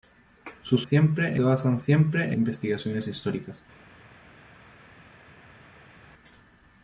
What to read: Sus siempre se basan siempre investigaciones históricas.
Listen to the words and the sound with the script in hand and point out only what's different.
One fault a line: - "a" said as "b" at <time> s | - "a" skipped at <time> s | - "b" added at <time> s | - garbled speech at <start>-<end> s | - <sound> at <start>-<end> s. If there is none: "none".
none